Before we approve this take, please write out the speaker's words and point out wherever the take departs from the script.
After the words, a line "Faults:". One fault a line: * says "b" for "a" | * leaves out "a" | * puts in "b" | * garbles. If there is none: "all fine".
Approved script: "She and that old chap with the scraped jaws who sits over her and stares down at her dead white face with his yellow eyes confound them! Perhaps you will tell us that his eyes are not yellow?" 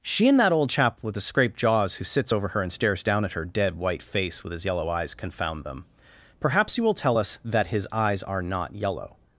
"She and that old chap with the scraped jaws who sits over her and stares down at her dead white face with his yellow eyes confound them! Perhaps you will tell us that his eyes are not yellow?"
Faults:
all fine